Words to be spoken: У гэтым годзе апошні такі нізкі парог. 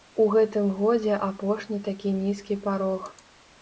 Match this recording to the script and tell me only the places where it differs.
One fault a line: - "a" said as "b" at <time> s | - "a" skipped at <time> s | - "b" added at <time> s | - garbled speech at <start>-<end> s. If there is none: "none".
none